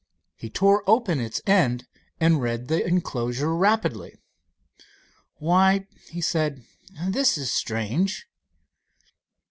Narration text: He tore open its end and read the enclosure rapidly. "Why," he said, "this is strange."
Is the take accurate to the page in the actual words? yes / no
yes